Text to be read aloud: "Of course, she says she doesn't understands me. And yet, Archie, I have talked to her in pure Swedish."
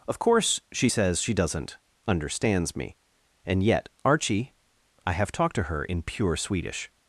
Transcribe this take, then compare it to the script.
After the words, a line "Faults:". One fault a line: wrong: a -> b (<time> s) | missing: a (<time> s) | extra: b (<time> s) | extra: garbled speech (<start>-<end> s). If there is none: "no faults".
"Of course, she says she doesn't understands me. And yet, Archie, I have talked to her in pure Swedish."
Faults:
no faults